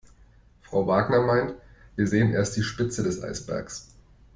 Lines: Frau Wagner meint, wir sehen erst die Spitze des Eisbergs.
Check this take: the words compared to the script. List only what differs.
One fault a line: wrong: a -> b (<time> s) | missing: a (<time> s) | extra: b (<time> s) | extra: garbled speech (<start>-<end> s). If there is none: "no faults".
no faults